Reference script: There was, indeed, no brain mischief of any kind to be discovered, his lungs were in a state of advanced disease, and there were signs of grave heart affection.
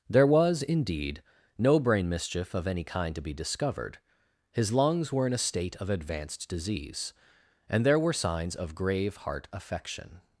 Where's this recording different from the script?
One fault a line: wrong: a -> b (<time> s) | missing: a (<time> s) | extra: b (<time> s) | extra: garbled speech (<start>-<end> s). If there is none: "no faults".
no faults